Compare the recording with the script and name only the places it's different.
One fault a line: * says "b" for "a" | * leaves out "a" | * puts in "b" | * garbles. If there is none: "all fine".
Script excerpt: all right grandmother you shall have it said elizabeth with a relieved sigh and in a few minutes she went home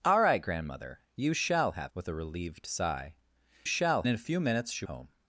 * leaves out "it said elizabeth"
* says "shall" for "and"
* leaves out "went"